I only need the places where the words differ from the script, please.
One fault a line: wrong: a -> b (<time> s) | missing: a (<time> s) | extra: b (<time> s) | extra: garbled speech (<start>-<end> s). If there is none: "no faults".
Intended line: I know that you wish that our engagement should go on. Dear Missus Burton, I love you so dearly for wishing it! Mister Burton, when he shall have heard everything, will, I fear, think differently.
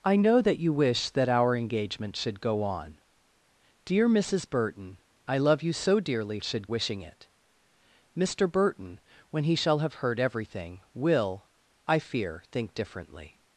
wrong: for -> should (6.4 s)